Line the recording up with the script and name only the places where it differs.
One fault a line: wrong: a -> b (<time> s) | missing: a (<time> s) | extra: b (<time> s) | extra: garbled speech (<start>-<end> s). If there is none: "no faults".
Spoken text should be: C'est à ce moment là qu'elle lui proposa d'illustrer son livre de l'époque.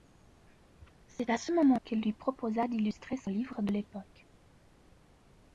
missing: là (1.8 s)